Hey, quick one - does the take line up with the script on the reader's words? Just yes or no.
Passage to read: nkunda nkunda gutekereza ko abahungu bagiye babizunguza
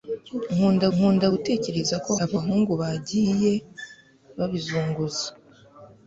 yes